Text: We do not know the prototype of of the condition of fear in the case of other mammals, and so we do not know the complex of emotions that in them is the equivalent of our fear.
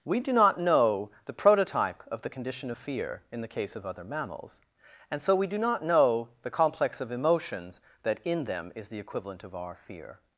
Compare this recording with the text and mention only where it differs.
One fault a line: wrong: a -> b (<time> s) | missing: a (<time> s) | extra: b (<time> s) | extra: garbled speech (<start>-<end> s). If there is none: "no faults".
missing: of (2.2 s)